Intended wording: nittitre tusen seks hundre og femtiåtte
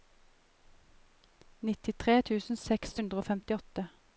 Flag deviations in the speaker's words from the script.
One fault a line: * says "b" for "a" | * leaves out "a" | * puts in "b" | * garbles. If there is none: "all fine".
all fine